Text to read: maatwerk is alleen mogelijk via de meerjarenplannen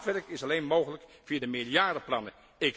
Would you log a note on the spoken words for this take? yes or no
no